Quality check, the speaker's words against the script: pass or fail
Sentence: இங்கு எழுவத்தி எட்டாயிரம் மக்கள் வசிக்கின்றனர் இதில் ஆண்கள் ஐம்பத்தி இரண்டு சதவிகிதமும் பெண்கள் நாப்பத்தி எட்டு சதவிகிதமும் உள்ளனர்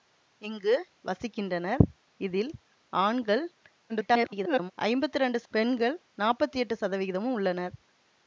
fail